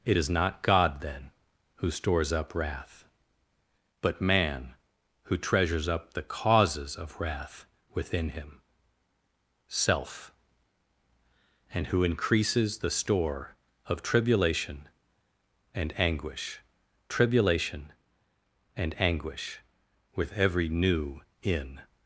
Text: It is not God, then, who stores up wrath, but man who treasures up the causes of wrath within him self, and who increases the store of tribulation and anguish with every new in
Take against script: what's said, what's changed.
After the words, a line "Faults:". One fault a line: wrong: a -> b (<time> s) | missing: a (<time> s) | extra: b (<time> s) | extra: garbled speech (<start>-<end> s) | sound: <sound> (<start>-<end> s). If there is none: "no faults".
It is not God, then, who stores up wrath, but man who treasures up the causes of wrath within him self, and who increases the store of tribulation and anguish tribulation and anguish with every new in
Faults:
extra: tribulation and anguish (17.1 s)